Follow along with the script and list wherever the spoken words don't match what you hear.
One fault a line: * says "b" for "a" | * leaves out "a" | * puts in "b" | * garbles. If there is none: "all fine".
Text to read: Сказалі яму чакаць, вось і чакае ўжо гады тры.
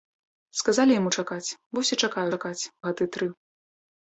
* says "чакаць" for "ўжо"